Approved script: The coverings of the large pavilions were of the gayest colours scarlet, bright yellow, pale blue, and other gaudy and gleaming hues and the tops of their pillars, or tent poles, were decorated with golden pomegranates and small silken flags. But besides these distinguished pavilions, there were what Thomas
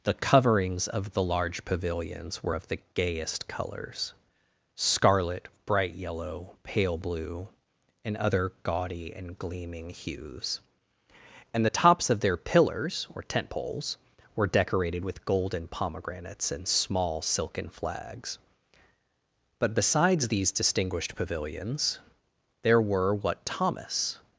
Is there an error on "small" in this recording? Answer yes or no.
no